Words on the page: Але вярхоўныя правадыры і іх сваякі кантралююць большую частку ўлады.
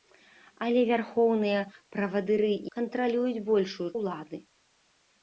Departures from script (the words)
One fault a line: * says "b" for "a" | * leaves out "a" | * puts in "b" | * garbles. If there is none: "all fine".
* leaves out "іх сваякі"
* leaves out "частку"